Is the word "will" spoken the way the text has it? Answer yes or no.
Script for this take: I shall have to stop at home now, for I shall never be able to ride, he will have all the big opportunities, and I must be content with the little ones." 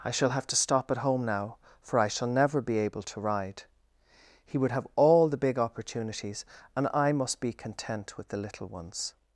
no